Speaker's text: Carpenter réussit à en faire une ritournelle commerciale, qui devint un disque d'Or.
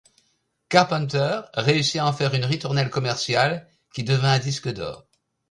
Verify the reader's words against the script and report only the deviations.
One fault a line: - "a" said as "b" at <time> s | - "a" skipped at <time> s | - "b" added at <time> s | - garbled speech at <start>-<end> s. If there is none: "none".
none